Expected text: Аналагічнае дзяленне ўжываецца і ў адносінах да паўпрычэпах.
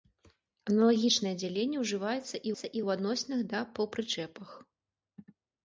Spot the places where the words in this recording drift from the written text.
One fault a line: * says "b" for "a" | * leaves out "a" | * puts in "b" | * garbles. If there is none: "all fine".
* puts in "і"